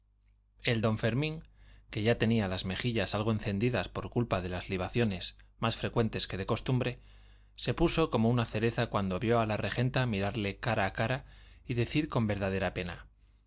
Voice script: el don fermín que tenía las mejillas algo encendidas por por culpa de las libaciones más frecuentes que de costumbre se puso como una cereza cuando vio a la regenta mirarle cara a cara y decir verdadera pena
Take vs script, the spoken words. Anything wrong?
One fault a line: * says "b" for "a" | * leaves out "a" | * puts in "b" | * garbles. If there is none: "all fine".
* puts in "ya"
* leaves out "por"
* puts in "con"